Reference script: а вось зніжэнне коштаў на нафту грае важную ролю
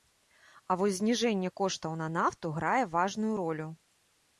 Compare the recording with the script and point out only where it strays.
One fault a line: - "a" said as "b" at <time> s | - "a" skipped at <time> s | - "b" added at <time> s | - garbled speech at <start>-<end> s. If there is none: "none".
none